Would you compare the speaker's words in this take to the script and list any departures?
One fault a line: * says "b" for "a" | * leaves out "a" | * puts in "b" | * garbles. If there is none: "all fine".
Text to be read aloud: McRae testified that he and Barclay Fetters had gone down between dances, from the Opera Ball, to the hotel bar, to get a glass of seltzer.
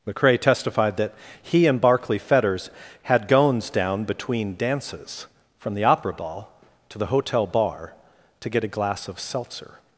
* says "gones" for "gone"